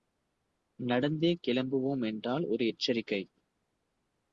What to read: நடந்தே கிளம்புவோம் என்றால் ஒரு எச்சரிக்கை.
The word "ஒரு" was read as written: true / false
true